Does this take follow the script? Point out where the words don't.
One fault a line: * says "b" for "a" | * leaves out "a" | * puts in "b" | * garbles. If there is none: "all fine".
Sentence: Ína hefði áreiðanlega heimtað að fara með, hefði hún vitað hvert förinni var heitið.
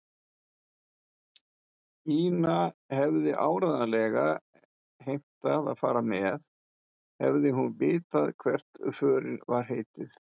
all fine